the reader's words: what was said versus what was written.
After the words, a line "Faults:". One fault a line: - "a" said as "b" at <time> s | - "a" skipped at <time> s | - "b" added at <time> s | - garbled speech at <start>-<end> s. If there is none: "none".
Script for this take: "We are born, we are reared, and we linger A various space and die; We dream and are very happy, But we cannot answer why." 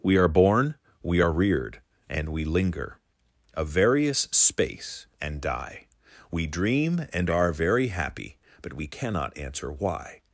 "We are born, we are reared, and we linger A various space and die; We dream and are very happy, But we cannot answer why."
Faults:
none